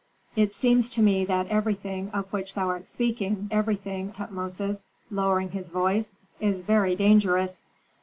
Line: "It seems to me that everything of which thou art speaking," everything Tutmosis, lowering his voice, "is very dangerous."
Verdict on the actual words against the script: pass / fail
pass